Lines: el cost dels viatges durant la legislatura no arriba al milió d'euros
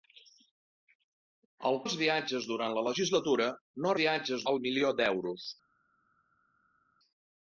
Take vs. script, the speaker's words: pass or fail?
fail